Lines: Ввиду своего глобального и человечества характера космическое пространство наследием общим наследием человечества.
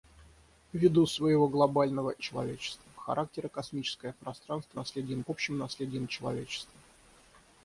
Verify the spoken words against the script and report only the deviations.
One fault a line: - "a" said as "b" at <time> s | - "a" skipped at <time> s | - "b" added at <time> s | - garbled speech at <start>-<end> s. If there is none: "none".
none